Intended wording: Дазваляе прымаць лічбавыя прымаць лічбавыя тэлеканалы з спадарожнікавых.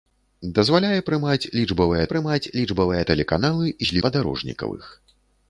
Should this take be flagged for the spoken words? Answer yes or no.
no